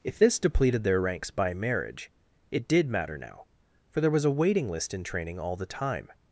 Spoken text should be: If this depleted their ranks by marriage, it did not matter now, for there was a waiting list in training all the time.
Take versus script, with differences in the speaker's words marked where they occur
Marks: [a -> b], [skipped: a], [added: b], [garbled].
If this depleted their ranks by marriage, it did [skipped: not] matter now, for there was a waiting list in training all the time.